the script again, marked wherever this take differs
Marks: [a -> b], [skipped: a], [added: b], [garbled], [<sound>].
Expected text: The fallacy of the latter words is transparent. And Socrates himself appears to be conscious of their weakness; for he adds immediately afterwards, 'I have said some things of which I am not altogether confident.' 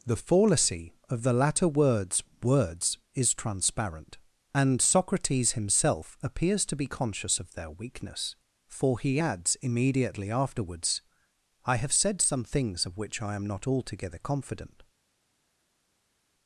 The fallacy of the latter words [added: words] is transparent. And Socrates himself appears to be conscious of their weakness; for he adds immediately afterwards, 'I have said some things of which I am not altogether confident.'